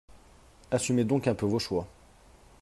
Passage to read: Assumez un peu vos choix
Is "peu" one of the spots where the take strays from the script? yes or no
no